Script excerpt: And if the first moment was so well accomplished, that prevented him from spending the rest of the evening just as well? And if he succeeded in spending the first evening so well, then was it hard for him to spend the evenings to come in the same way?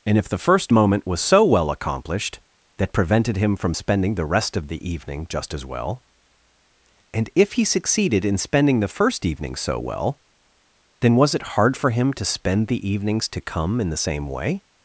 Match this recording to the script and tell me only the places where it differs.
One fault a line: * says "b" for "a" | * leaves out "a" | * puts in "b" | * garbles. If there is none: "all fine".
all fine